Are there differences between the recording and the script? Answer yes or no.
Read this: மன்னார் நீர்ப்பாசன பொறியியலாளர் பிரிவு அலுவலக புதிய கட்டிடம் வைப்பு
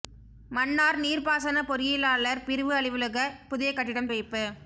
no